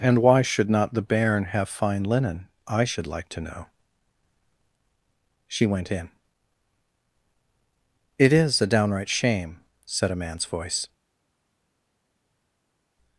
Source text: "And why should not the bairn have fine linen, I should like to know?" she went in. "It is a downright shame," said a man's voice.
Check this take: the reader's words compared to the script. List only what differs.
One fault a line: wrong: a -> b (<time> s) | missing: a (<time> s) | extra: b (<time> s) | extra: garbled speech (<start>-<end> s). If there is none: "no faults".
no faults